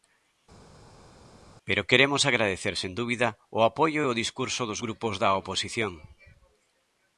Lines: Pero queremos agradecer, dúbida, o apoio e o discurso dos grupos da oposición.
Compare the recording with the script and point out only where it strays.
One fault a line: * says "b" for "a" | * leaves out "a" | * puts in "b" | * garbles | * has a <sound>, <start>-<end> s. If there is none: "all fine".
* puts in "sen"